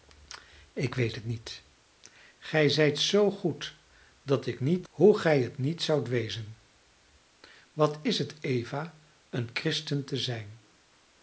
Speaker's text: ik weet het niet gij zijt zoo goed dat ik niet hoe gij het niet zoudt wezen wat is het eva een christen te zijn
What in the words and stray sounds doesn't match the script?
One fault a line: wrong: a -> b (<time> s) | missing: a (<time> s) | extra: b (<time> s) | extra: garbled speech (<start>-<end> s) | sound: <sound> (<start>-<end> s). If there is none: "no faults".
no faults